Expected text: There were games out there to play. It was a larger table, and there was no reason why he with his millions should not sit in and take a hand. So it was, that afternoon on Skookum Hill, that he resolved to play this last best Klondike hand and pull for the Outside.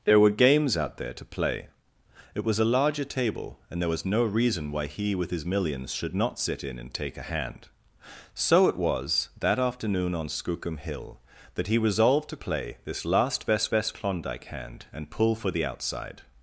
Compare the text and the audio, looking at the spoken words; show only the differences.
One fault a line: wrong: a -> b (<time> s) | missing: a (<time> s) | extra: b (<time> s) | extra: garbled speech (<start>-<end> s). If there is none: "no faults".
extra: best (13.7 s)